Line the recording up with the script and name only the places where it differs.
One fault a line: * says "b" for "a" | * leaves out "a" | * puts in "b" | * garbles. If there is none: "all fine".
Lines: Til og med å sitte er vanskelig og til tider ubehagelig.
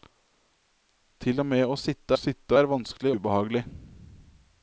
* puts in "sitte"
* leaves out "og til tider"